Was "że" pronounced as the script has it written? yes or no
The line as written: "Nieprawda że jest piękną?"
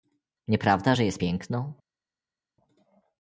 yes